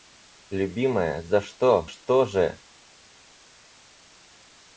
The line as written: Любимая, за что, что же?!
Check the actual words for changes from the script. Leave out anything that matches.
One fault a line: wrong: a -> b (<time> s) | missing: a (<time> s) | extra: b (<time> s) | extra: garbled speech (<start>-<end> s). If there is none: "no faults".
no faults